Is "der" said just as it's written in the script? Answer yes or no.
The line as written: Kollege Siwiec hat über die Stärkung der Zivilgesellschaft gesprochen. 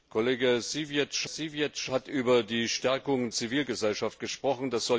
no